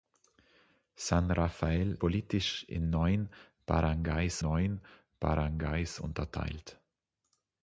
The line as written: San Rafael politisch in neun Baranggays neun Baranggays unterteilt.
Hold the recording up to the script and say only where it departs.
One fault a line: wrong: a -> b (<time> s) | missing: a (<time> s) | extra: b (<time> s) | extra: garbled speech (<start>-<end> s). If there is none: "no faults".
no faults